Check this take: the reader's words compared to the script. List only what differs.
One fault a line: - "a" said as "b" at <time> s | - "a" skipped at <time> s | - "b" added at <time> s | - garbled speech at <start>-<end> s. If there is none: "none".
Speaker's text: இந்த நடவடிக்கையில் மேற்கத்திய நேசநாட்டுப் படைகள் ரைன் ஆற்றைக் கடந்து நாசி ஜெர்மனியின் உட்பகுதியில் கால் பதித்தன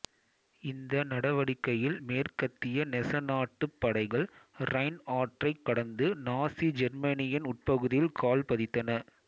none